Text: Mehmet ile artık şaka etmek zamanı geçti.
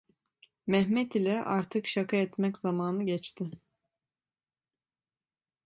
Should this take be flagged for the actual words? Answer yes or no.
no